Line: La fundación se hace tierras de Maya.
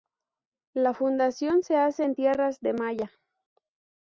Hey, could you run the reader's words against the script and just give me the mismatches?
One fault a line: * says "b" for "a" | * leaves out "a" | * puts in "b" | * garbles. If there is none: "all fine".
* puts in "en"